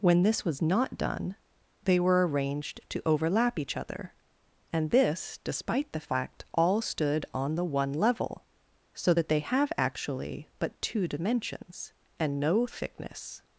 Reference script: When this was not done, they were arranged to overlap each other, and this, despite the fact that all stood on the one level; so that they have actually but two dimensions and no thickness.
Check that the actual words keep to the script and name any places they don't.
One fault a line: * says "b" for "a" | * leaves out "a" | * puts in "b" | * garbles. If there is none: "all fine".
* leaves out "that"